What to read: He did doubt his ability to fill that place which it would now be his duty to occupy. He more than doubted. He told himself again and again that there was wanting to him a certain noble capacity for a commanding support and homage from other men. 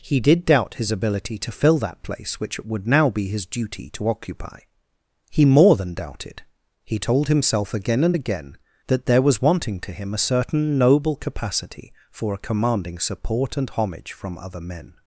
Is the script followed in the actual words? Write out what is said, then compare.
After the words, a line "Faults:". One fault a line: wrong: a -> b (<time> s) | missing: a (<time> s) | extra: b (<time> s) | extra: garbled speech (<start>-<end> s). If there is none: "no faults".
He did doubt his ability to fill that place which it would now be his duty to occupy. He more than doubted. He told himself again and again that there was wanting to him a certain noble capacity for a commanding support and homage from other men.
Faults:
no faults